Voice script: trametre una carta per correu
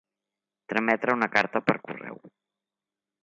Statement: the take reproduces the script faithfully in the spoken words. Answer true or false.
true